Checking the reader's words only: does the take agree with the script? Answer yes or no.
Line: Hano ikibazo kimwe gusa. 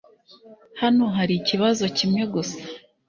no